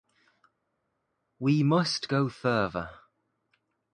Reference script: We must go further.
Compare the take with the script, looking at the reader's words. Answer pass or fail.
pass